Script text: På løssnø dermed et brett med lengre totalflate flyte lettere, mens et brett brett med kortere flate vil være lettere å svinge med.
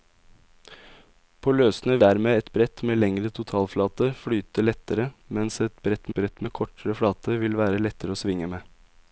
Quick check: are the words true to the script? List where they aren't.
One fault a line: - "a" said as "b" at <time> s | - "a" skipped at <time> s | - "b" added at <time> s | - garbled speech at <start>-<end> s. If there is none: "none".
none